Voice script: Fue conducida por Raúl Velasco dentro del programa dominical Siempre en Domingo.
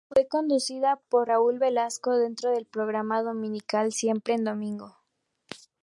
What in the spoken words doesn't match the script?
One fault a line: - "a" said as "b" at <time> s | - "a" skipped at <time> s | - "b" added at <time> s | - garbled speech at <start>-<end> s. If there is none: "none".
none